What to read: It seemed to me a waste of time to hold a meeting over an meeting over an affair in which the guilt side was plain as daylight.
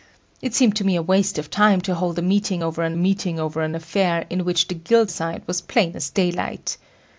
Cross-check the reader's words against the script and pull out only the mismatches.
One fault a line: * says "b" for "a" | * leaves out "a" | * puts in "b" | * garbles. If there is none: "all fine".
all fine